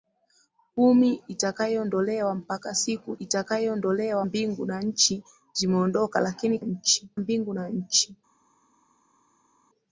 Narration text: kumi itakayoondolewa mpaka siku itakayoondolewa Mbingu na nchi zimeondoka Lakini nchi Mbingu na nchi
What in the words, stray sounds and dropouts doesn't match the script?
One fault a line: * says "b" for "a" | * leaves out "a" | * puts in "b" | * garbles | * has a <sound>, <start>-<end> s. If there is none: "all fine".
all fine